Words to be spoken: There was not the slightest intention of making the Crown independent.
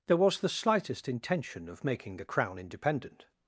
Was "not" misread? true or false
true